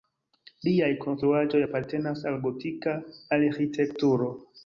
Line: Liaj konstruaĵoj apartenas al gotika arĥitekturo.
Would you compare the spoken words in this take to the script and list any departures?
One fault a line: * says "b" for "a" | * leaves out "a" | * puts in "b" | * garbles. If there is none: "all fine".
all fine